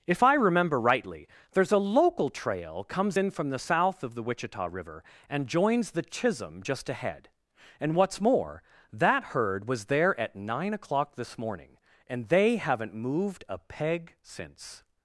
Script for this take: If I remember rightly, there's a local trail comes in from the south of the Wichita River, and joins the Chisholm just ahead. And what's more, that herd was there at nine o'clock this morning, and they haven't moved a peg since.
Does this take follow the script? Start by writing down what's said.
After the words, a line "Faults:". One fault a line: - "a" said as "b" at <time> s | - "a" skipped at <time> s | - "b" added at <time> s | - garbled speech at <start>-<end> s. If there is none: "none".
If I remember rightly, there's a local trail comes in from the south of the Wichita River, and joins the Chisholm just ahead. And what's more, that herd was there at nine o'clock this morning, and they haven't moved a peg since.
Faults:
none